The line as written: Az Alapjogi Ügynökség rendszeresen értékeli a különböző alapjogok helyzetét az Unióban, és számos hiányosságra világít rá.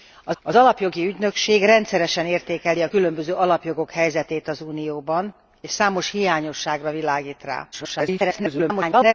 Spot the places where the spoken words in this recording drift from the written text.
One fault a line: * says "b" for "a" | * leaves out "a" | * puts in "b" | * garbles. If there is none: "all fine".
* puts in "az"
* garbles